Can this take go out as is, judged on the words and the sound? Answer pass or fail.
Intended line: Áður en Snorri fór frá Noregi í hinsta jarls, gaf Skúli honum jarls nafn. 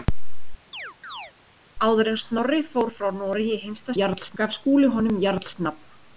fail